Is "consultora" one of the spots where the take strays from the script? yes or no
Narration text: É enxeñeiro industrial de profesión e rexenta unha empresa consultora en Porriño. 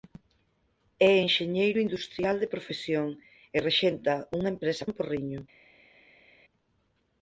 yes